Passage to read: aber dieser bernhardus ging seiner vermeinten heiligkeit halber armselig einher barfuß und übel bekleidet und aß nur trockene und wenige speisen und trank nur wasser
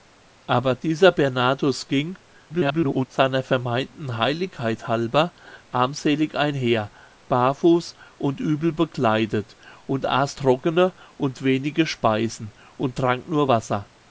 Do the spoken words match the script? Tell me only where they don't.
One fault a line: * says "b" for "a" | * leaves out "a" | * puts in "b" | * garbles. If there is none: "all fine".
* garbles
* leaves out "nur"